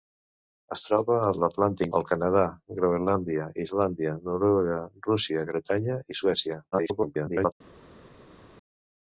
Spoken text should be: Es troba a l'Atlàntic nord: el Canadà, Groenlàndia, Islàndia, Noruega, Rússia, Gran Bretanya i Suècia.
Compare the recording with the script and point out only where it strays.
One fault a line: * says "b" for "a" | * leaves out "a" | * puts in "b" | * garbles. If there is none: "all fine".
* leaves out "nord"
* leaves out "Gran"
* garbles